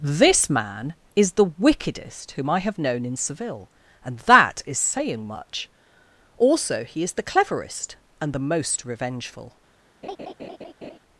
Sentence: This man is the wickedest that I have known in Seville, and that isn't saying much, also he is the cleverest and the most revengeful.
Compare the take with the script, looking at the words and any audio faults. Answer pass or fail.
fail